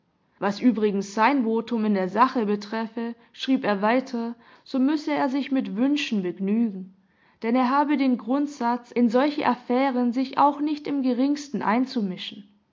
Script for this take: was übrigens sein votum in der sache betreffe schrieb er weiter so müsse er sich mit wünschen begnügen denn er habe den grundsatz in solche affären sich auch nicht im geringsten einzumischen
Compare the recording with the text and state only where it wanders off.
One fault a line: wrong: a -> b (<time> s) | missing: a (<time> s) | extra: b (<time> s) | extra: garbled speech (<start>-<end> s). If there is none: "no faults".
no faults